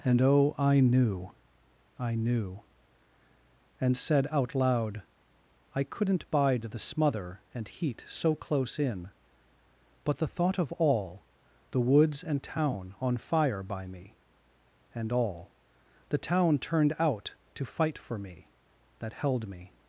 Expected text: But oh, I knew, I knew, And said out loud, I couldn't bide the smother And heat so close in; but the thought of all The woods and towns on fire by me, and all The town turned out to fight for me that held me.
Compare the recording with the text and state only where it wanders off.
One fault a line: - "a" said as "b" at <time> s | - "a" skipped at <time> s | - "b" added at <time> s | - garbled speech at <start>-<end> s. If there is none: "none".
- "But" said as "And" at 0.0 s
- "towns" said as "town" at 12.4 s